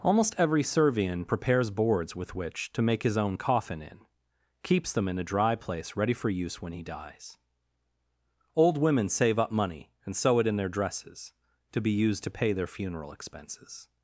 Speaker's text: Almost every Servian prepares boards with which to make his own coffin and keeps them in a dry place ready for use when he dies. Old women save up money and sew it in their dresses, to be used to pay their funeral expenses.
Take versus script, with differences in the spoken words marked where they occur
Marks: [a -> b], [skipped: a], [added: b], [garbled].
Almost every Servian prepares boards with which to make his own coffin [and -> in] keeps them in a dry place ready for use when he dies. Old women save up money and sew it in their dresses, to be used to pay their funeral expenses.